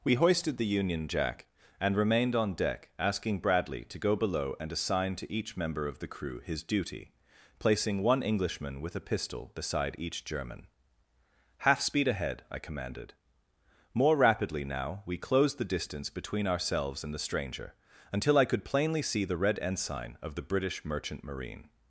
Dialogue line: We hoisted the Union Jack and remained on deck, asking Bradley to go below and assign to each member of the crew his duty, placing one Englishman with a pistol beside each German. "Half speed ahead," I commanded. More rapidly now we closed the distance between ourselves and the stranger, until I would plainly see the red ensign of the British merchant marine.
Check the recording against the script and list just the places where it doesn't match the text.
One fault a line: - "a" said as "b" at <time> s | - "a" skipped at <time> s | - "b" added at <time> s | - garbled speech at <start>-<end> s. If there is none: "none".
- "would" said as "could" at 18.4 s